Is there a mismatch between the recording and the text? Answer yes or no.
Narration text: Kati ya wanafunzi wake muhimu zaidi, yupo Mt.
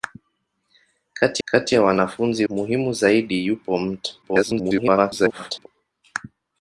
yes